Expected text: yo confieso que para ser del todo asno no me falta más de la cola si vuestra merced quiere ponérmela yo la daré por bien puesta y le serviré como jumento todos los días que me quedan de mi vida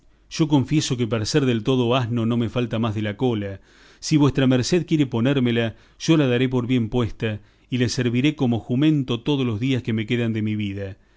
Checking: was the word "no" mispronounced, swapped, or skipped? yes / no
no